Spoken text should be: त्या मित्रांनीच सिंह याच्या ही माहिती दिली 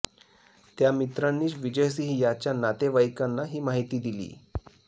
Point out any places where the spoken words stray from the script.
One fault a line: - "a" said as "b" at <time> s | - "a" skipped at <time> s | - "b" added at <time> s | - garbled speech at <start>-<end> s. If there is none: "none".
- "विजय" added at 1.6 s
- "नातेवाईकांना" added at 2.5 s